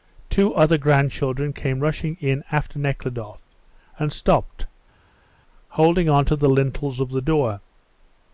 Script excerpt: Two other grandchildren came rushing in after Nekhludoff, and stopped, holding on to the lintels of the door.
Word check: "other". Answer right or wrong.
right